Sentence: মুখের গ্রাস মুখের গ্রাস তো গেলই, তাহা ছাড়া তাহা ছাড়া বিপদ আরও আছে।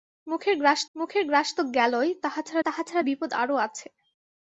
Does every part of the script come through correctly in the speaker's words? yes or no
yes